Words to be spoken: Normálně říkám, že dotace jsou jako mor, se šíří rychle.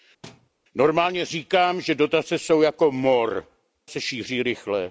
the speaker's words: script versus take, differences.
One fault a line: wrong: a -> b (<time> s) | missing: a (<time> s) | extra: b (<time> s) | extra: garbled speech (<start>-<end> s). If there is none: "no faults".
no faults